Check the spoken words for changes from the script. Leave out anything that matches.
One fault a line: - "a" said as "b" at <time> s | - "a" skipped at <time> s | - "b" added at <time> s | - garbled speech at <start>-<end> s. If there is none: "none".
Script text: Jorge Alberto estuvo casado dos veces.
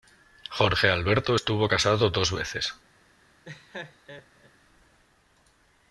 none